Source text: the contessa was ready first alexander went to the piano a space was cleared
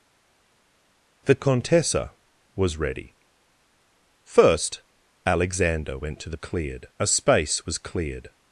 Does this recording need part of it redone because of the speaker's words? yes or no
yes